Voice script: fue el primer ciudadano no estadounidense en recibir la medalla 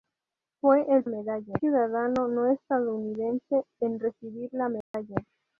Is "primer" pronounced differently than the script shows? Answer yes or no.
yes